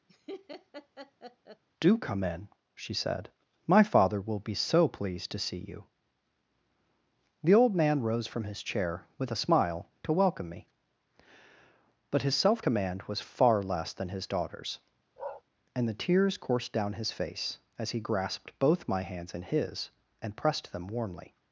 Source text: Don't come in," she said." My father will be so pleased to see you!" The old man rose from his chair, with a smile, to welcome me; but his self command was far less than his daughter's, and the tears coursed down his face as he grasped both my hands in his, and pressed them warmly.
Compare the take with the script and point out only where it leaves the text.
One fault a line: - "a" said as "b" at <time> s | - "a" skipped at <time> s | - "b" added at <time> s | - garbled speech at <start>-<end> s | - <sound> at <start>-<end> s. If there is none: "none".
- laugh at 0.1-1.6 s
- "Don't" said as "Do" at 1.8 s
- bark at 15.2-15.4 s